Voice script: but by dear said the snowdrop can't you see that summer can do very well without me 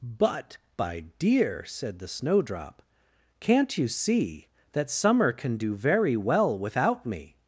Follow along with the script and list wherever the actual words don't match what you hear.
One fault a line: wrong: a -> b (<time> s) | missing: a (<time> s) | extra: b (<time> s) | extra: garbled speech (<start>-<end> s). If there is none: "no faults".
no faults